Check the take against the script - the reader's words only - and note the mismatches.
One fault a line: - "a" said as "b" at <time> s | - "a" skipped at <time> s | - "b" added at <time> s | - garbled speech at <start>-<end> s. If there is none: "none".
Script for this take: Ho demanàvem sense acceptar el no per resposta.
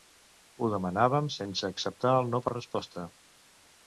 none